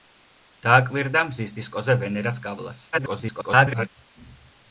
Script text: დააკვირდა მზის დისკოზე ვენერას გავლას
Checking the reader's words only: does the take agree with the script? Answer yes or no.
no